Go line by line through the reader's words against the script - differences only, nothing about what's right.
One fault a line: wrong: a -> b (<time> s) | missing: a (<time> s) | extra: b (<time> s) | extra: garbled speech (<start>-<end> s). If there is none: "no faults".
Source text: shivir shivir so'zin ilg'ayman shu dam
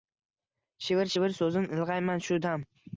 no faults